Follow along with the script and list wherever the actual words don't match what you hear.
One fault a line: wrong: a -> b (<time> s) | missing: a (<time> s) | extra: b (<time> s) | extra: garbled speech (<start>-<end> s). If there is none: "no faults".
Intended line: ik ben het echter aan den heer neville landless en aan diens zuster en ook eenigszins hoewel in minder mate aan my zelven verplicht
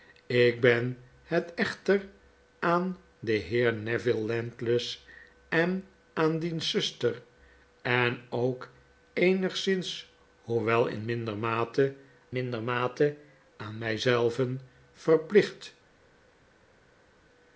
extra: minder mate (12.3 s)